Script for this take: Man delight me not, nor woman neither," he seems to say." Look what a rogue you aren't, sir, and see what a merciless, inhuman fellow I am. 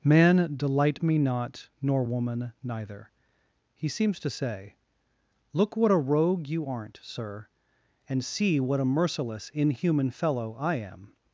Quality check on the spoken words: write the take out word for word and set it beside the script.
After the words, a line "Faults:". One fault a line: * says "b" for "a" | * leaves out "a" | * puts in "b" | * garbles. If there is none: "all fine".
Man delight me not, nor woman neither," he seems to say." Look what a rogue you aren't, sir, and see what a merciless, inhuman fellow I am.
Faults:
all fine